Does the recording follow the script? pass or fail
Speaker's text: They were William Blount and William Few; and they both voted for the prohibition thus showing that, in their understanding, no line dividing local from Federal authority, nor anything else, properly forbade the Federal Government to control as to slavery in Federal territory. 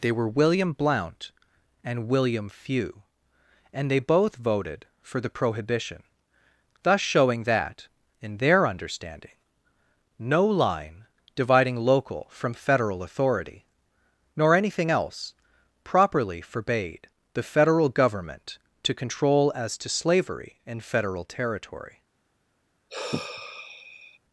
pass